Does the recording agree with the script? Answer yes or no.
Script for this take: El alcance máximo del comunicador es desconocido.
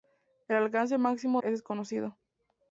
no